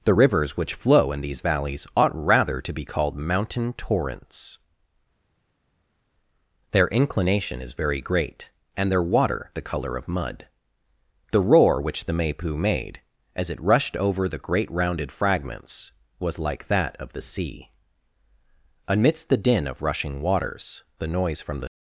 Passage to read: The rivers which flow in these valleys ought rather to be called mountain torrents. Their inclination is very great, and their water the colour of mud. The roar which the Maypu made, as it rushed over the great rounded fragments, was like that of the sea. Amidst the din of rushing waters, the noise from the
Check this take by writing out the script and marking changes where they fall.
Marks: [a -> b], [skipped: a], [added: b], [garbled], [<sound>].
The rivers which flow in these valleys ought rather to be called mountain torrents. Their inclination is very great, and their water the colour of mud. The roar which the Maypu made, as it rushed over the great rounded fragments, was like that of the sea. Amidst the din of rushing waters, the noise from the